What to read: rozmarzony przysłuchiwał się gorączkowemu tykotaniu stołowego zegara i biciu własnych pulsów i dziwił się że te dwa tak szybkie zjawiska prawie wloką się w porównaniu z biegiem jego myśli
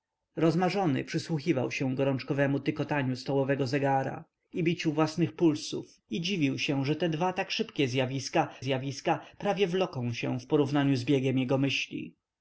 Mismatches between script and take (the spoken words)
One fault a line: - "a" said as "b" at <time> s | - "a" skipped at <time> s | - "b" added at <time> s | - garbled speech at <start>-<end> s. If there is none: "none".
- "zjawiska" added at 8.6 s